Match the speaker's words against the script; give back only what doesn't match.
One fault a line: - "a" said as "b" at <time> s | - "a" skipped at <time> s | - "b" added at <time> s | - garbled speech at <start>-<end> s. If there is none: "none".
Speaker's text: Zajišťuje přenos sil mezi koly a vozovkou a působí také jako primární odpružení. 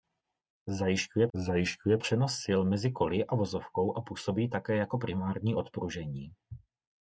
- "zajišťuje" added at 1.3 s